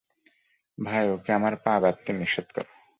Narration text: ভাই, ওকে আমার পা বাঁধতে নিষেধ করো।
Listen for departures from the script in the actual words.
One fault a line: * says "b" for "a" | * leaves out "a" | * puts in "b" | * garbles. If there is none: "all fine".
all fine